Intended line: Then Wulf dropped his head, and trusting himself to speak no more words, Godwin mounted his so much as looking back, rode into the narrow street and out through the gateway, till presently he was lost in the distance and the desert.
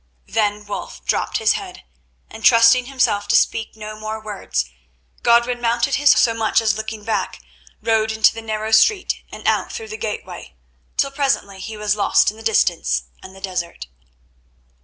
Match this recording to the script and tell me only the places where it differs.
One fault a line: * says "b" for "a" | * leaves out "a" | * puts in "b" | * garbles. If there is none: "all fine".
all fine